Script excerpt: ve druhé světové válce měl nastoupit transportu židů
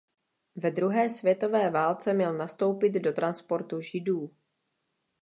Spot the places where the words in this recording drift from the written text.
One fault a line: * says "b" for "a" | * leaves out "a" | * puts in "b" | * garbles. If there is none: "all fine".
* puts in "do"